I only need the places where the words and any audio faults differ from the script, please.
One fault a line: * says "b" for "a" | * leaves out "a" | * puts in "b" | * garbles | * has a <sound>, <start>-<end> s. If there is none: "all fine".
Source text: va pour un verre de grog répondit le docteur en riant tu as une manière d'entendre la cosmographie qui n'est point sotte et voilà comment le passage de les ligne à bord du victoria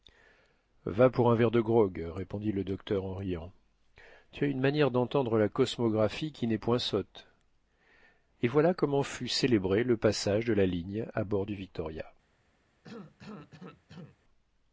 * puts in "fut célébré"
* says "la" for "les"
* has a cough, 12.8-14.2 s